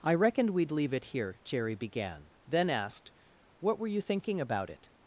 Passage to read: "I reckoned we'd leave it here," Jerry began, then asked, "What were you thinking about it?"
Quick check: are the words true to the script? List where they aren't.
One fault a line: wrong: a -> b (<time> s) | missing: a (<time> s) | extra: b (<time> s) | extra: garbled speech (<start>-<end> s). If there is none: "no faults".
no faults